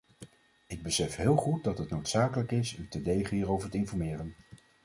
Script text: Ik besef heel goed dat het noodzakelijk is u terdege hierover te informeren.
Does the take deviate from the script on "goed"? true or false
false